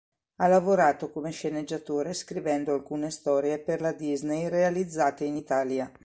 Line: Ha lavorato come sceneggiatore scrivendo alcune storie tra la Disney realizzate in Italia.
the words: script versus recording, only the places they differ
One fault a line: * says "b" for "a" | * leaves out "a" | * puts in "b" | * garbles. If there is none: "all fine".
* says "per" for "tra"